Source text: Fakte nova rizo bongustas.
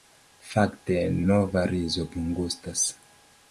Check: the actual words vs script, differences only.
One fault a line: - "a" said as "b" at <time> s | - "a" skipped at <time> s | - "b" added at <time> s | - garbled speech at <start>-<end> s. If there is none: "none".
none